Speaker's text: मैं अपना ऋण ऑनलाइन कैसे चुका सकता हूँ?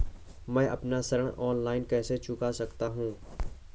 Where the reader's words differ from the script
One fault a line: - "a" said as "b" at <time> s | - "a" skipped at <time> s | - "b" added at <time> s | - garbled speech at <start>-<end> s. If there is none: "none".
none